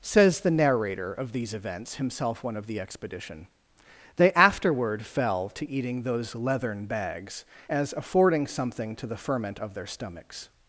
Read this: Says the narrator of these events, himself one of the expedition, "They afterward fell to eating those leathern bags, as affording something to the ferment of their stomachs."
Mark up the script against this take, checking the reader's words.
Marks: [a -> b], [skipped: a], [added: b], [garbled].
Says the narrator of these events, himself one of the expedition, "They afterward fell to eating those leathern bags, as affording something to the ferment of their stomachs."